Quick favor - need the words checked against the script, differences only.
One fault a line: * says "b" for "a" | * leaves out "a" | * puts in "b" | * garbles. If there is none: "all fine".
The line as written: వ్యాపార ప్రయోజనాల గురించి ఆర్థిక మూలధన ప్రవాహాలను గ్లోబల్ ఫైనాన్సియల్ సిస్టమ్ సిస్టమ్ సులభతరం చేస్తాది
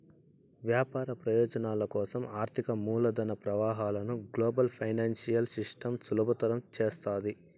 * says "కోసం" for "గురించి"
* leaves out "సిస్టమ్"